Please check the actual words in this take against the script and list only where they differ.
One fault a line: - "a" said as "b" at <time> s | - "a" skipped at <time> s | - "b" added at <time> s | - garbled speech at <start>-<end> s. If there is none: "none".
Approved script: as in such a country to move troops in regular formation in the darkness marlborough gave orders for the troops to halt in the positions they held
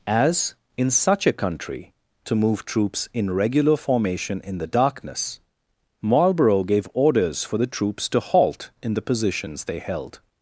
none